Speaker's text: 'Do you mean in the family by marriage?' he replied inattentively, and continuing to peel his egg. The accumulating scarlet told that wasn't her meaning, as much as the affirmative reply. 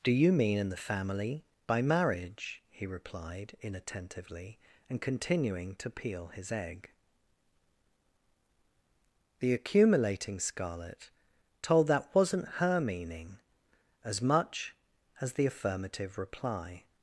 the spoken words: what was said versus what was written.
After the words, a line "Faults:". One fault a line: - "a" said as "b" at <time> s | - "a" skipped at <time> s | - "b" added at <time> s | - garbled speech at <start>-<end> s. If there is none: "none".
'Do you mean in the family by marriage?' he replied inattentively, and continuing to peel his egg. The accumulating scarlet told that wasn't her meaning, as much as the affirmative reply.
Faults:
none